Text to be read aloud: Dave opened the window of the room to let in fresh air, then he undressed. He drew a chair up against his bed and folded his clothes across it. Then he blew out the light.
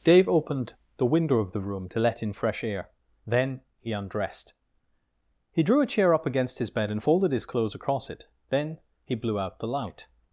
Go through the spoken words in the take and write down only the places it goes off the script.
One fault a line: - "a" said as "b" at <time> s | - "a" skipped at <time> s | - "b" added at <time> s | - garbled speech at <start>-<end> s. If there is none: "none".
none